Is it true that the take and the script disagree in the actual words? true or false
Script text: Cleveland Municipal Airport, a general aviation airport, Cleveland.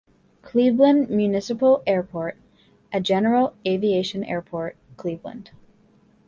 false